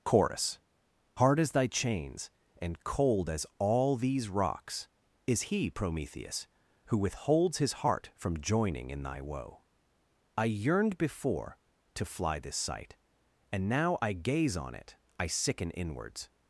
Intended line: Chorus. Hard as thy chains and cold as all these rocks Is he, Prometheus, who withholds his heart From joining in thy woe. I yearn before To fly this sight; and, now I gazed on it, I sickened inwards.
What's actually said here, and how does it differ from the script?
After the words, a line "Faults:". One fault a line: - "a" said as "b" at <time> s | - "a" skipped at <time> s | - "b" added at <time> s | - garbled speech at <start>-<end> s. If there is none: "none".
Chorus. Hard as thy chains and cold as all these rocks Is he, Prometheus, who withholds his heart From joining in thy woe. I yearned before To fly this sight; and, now I gaze on it, I sicken inwards.
Faults:
- "yearn" said as "yearned" at 10.4 s
- "gazed" said as "gaze" at 14.1 s
- "sickened" said as "sicken" at 15.3 s